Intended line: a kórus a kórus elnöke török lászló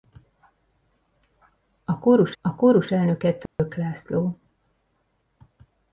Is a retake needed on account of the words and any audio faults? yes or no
yes